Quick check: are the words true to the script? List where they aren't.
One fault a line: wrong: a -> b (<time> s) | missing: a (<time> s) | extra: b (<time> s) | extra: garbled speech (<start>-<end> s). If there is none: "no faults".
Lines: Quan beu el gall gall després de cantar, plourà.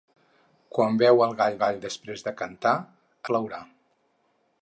no faults